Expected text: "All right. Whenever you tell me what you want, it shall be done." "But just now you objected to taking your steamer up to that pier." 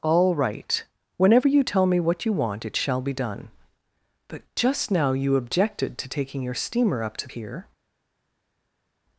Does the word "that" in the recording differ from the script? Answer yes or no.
yes